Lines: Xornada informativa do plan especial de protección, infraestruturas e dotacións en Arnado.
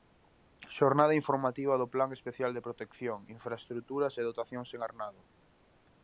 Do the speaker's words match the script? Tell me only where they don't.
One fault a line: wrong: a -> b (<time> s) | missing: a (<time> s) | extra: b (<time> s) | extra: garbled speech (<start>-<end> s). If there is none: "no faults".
no faults